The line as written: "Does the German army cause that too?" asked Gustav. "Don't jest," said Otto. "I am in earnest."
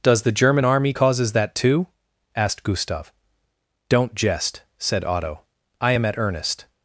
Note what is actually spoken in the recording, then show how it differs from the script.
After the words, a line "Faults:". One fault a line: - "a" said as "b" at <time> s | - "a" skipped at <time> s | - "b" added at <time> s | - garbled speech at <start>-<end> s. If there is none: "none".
"Does the German army causes that too?" asked Gustav. "Don't jest," said Otto. "I am at earnest."
Faults:
- "cause" said as "causes" at 0.9 s
- "in" said as "at" at 6.1 s